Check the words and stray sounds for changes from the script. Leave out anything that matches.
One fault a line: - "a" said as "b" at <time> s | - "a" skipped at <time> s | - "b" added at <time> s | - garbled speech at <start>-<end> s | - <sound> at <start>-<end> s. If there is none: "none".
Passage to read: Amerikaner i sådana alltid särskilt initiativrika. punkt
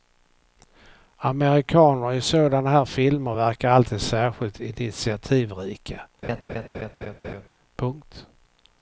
- "här filmer verkar" added at 2.7 s
- laugh at 6.2-7.5 s